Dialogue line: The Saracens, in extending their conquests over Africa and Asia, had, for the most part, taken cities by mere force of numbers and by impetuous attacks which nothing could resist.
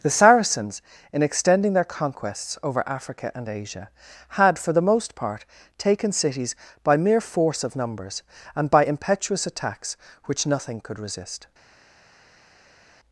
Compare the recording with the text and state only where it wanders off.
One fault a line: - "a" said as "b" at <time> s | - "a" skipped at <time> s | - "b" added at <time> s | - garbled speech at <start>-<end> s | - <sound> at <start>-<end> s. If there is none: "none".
none